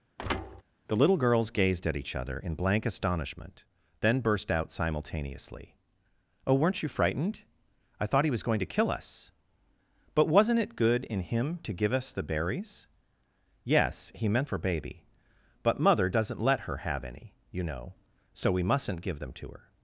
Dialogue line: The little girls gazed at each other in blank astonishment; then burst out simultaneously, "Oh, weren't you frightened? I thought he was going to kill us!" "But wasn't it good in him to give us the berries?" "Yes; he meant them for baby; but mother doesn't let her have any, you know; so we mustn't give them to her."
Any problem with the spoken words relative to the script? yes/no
yes